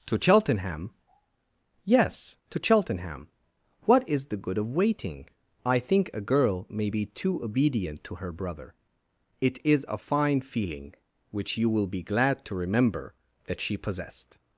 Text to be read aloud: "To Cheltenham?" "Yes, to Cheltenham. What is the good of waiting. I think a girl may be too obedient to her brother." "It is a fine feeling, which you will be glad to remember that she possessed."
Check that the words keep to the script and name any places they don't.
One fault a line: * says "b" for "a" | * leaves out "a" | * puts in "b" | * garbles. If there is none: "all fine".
all fine